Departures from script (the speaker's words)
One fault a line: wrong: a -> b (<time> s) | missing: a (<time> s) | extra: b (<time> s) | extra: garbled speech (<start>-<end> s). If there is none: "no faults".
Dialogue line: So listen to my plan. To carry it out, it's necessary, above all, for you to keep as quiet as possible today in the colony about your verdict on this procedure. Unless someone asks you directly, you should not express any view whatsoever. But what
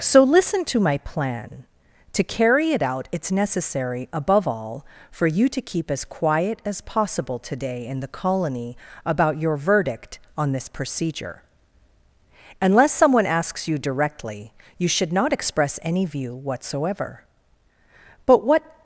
no faults